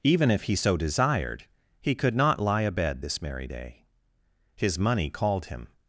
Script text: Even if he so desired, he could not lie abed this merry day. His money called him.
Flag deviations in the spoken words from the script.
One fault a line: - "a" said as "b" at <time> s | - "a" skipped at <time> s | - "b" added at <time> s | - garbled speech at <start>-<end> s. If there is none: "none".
none